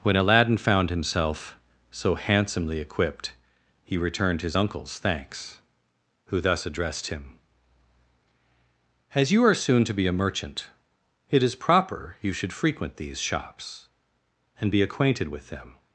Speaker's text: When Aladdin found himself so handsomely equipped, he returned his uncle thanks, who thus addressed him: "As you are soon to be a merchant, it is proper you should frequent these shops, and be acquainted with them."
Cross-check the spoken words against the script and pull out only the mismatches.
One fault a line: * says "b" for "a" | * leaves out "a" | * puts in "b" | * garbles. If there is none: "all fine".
* says "uncles" for "uncle"